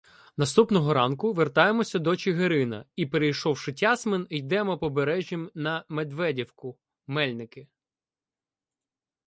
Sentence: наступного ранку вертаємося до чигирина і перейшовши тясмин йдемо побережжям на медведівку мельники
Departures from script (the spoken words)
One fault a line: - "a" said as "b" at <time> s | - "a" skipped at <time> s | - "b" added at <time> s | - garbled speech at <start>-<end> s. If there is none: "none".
none